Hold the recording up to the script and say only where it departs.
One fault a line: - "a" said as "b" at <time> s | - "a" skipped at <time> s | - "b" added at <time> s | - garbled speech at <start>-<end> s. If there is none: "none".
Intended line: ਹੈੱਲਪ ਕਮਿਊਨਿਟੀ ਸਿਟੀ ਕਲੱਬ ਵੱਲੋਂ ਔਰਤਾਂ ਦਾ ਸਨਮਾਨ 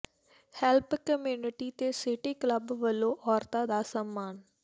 - "ਤੇ" added at 1.7 s